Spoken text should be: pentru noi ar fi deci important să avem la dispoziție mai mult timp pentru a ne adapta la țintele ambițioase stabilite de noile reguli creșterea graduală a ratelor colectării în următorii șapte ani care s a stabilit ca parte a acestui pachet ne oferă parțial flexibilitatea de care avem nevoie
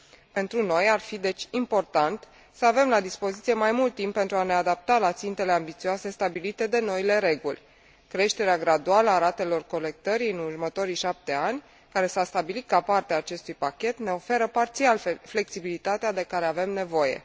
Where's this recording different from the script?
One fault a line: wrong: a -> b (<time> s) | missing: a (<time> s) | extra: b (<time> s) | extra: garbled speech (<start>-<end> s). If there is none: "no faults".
no faults